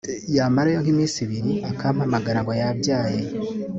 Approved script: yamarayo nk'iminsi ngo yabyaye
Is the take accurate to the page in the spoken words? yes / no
no